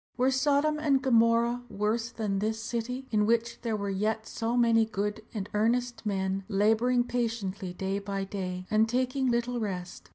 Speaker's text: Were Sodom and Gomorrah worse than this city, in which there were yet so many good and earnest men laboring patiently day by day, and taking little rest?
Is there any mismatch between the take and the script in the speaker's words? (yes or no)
no